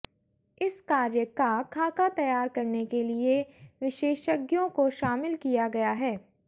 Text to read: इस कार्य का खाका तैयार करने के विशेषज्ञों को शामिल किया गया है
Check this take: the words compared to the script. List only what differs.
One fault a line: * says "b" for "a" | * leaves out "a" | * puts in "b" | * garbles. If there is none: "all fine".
* puts in "लिए"